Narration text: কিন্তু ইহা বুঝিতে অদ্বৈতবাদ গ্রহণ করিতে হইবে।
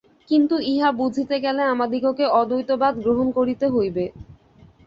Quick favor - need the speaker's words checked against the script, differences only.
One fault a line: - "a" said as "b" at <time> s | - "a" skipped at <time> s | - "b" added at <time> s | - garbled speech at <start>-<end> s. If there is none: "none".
- "গেলে আমাদিগকে" added at 1.4 s